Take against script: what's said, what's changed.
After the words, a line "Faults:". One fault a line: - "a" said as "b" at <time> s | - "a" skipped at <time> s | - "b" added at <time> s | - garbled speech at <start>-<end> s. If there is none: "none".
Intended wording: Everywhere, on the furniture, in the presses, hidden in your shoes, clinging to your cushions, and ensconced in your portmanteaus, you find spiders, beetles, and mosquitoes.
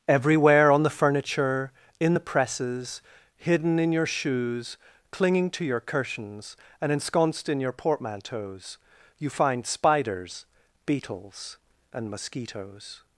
Everywhere, on the furniture, in the presses, hidden in your shoes, clinging to your cushions, and ensconced in your portmanteaus, you find spiders, beetles, and mosquitoes.
Faults:
none